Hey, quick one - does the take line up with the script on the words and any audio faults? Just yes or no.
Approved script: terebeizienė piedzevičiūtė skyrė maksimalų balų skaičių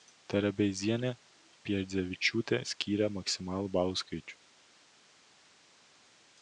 yes